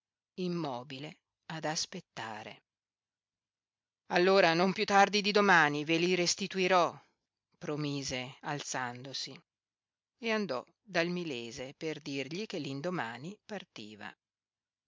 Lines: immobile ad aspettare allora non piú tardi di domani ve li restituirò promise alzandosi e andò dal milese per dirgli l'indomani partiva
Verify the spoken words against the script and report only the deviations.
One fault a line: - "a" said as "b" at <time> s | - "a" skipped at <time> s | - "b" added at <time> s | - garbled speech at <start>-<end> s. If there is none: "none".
- "che" added at 12.5 s